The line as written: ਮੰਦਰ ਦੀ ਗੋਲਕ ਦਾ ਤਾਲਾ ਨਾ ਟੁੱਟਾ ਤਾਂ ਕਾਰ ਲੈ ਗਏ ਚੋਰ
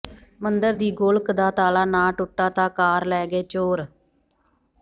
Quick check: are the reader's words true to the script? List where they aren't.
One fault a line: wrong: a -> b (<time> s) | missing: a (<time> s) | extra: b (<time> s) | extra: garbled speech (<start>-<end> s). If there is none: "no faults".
no faults